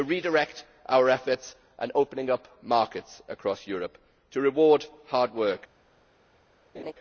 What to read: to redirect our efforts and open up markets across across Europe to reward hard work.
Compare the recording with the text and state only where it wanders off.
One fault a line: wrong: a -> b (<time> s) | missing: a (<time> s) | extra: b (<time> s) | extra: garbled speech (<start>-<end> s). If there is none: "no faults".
missing: across (3.7 s)